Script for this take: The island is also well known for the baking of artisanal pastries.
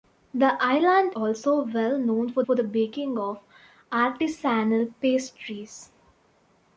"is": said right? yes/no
no